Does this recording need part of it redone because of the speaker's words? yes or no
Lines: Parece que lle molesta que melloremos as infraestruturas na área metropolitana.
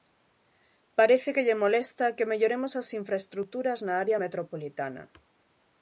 no